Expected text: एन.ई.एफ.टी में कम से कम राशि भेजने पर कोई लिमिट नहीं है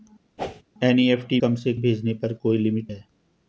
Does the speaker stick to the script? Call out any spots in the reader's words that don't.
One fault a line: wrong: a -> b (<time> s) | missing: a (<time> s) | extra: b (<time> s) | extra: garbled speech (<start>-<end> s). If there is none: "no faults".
missing: में (1.4 s)
missing: कम राशि (1.7 s)
missing: नहीं (2.9 s)